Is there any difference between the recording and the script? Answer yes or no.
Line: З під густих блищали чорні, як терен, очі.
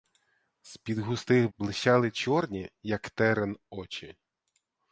no